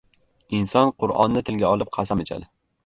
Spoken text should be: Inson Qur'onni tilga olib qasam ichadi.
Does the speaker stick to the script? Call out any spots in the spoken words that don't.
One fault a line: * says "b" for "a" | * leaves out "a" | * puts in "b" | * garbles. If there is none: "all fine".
all fine